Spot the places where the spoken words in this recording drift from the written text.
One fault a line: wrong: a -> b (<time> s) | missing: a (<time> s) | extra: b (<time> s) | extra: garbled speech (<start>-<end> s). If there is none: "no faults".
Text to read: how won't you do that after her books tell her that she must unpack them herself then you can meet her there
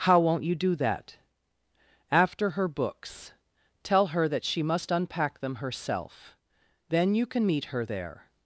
no faults